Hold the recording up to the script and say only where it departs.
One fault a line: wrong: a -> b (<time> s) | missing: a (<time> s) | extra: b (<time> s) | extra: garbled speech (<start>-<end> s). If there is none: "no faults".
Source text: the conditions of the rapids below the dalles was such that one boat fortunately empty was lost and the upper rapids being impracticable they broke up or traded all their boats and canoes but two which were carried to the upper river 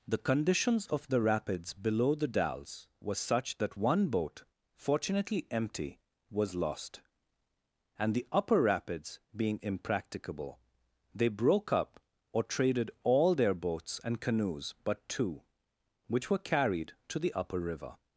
wrong: was -> were (3.0 s)